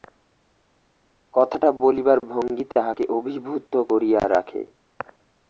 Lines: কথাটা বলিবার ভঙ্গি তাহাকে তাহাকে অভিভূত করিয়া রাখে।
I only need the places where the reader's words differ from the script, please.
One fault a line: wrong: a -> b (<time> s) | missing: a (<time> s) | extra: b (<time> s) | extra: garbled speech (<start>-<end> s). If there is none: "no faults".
missing: তাহাকে (3.0 s)